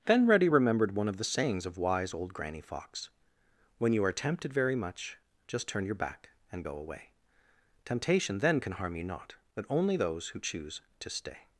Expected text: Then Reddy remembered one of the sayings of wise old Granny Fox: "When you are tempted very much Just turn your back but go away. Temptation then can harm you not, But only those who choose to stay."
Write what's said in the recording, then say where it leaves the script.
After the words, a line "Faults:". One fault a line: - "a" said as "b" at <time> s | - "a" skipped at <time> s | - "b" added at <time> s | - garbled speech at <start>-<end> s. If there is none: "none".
Then Reddy remembered one of the sayings of wise old Granny Fox: "When you are tempted very much Just turn your back and go away. Temptation then can harm you not, But only those who choose to stay."
Faults:
- "but" said as "and" at 6.5 s